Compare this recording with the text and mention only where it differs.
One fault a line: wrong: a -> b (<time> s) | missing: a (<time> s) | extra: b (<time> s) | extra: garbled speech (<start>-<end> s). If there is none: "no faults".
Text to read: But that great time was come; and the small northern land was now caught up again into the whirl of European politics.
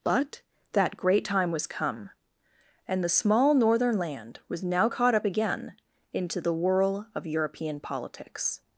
no faults